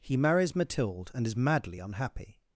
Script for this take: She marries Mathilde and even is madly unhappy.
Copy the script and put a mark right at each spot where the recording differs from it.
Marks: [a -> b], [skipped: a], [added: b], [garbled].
[She -> He] marries Mathilde and [skipped: even] is madly unhappy.